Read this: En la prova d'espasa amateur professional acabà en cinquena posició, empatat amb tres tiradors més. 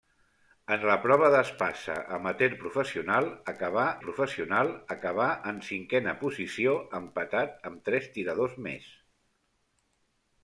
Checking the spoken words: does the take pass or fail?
fail